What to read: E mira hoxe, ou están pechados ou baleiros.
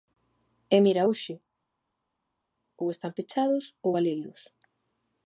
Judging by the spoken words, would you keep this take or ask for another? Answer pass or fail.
pass